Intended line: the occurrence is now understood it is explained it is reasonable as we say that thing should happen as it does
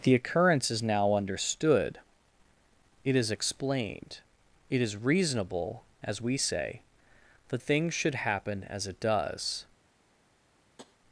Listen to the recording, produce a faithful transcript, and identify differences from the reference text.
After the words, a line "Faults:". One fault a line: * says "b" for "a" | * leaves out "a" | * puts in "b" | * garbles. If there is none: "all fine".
the occurrence is now understood it is explained it is reasonable as we say that thing should happen as it does
Faults:
all fine